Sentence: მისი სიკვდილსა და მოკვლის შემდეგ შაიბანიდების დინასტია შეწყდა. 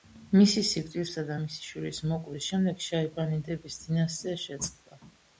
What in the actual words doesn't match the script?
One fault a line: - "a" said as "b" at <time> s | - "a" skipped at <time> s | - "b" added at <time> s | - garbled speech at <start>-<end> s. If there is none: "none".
- "მისი შვილის" added at 1.4 s